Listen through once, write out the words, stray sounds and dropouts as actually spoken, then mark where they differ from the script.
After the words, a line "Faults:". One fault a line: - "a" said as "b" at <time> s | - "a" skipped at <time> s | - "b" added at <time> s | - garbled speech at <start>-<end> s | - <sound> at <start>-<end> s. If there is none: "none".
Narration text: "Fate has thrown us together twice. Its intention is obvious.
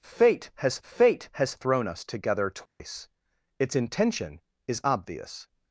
"Fate has fate has thrown us together twice. Its intention is obvious.
Faults:
- "fate has" added at 0.8 s
- dropout at 2.7-2.8 s